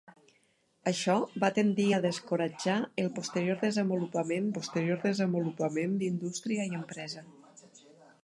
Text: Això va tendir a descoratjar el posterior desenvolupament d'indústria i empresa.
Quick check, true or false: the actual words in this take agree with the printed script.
false